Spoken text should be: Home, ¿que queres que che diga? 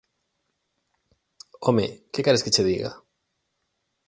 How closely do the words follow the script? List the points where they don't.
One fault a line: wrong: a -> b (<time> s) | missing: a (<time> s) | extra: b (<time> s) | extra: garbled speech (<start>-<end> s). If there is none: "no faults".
no faults